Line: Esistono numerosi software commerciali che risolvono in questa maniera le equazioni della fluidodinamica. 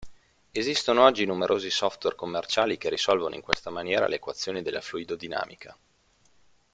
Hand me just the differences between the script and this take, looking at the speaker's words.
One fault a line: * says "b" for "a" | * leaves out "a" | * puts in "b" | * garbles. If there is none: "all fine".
* puts in "oggi"